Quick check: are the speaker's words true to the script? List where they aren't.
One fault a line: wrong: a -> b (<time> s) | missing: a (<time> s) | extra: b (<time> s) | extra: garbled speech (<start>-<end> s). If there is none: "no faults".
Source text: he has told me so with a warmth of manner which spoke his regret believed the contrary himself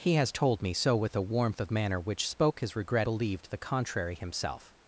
no faults